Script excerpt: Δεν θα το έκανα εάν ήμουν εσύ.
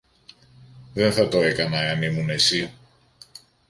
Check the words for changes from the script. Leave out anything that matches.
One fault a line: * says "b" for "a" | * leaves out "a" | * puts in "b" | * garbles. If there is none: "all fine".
all fine